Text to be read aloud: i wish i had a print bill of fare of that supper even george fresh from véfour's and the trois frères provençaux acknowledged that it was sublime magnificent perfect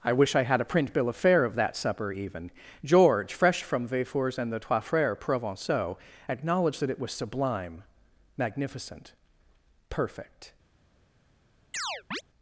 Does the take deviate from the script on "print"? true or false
false